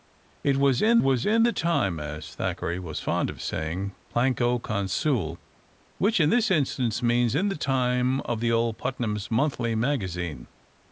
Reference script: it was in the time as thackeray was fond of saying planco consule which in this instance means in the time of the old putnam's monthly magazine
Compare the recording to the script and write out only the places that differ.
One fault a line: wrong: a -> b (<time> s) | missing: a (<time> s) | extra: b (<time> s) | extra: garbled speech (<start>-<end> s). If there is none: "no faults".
extra: was in (1.0 s)